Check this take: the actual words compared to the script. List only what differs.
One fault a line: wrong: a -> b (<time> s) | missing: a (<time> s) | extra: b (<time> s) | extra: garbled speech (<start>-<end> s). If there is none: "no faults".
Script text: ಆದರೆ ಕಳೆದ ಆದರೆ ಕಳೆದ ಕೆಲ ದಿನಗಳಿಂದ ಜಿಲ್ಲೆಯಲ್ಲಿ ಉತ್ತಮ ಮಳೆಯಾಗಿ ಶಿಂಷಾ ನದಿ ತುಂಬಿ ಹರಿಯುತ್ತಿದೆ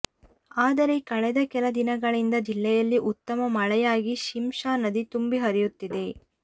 missing: ಆದರೆ ಕಳೆದ (1.4 s)